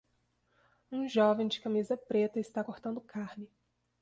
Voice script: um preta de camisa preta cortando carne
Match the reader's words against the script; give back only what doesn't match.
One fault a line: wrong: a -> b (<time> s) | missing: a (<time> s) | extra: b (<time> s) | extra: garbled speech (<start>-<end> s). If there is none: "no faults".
wrong: preta -> jovem (1.1 s)
extra: está (2.4 s)